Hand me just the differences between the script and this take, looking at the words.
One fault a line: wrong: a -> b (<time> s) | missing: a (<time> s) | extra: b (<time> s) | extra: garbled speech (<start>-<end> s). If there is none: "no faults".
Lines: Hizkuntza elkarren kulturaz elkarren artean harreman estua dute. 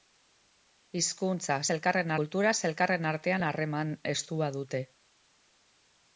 no faults